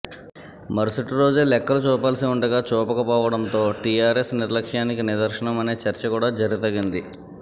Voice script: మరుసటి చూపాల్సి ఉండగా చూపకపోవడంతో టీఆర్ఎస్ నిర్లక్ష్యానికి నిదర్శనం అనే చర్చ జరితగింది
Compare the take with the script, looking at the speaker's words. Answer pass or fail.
fail